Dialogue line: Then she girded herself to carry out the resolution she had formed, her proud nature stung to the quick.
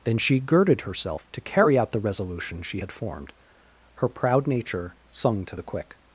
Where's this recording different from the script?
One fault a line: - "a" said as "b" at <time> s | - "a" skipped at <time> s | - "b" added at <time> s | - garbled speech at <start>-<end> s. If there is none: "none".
- "stung" said as "sung" at 5.1 s